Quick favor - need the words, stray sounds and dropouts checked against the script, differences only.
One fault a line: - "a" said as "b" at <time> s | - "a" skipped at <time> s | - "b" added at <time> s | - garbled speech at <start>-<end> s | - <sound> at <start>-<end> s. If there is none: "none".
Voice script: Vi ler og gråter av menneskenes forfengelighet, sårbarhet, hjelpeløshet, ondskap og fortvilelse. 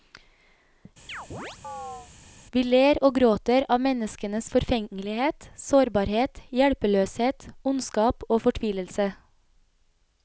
- chirp at 1.1-2.1 s